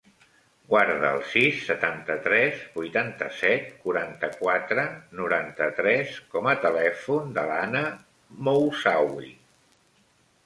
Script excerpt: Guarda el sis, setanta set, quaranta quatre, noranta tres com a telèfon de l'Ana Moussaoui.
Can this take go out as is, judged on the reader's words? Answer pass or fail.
fail